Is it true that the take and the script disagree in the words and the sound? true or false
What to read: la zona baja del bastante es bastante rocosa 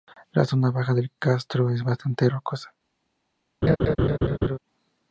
true